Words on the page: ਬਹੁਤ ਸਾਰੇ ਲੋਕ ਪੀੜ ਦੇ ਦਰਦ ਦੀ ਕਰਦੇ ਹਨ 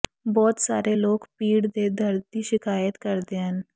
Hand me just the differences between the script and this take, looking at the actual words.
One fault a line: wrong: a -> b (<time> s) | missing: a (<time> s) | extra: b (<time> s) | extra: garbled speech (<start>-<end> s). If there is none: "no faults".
extra: ਸ਼ਿਕਾਇਤ (2.4 s)